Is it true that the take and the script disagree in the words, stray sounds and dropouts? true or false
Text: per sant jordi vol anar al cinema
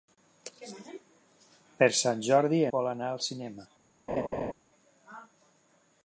true